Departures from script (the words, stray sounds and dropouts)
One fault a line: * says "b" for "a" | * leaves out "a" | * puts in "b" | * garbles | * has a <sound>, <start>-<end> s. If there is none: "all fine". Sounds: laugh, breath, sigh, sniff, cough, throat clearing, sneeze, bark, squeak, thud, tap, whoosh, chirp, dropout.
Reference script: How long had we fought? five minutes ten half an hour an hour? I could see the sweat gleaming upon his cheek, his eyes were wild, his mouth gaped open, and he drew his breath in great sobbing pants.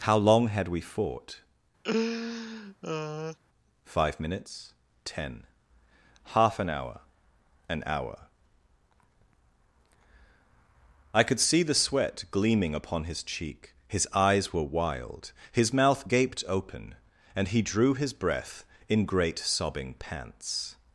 * has a laugh, 1.8-3.4 s